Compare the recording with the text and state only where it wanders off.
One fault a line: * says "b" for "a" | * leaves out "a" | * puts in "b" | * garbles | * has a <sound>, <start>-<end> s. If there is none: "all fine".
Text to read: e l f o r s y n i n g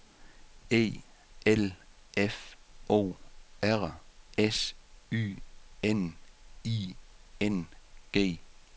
all fine